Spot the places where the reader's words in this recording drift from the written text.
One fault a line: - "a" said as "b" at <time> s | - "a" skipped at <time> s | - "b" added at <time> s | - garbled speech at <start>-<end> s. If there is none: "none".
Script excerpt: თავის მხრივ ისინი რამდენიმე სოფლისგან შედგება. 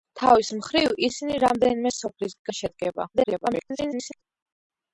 - garbled speech at 3.1-4.2 s